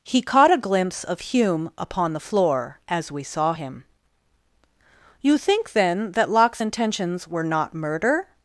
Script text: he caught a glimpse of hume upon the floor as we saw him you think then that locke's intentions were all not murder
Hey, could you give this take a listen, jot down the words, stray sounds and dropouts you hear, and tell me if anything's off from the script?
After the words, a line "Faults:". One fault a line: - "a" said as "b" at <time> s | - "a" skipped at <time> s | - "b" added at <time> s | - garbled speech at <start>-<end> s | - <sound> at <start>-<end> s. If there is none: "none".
he caught a glimpse of hume upon the floor as we saw him you think then that locke's intentions were not murder
Faults:
- "all" skipped at 7.4 s